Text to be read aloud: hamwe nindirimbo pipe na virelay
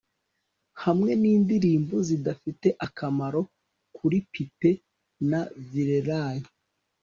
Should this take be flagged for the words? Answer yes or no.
yes